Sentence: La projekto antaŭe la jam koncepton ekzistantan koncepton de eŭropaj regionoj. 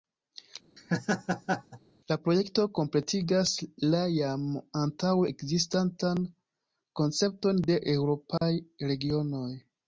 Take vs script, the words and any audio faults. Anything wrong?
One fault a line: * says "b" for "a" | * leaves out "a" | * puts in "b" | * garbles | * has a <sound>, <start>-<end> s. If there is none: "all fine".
* has a laugh, 0.8-1.8 s
* says "kompletigas" for "antaŭe"
* says "antaŭe" for "koncepton"
* has a dropout, 8.4-8.4 s